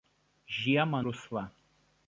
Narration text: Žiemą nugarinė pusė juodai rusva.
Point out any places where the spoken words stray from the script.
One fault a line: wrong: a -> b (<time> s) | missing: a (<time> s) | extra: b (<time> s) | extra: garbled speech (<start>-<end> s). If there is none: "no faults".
missing: nugarinė pusė juodai (1.0 s)